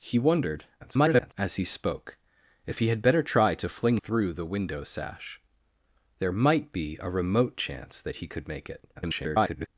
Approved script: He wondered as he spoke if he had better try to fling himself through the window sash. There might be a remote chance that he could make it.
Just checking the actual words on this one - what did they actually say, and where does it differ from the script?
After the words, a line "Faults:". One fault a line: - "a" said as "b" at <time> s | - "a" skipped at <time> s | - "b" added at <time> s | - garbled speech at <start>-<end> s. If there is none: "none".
He wondered [garbled] as he spoke if he had better try to fling through the window sash. There might be a remote chance that he could make it. [garbled]
Faults:
- garbled speech at 0.8-1.3 s
- "himself" skipped at 4.0 s
- garbled speech at 8.9-9.7 s